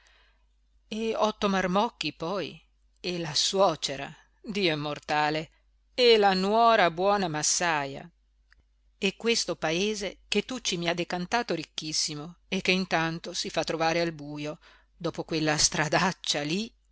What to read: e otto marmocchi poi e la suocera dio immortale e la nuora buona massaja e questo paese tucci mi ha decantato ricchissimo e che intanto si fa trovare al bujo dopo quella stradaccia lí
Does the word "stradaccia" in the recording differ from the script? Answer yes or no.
no